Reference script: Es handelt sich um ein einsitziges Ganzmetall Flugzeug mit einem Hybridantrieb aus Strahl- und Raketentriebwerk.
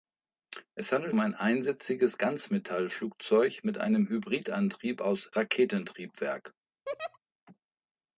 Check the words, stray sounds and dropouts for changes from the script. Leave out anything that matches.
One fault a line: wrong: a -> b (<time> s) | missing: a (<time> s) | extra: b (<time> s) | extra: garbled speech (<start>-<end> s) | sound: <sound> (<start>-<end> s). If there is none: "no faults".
missing: sich (1.1 s)
missing: Strahl und (5.3 s)
sound: laugh (6.9-7.2 s)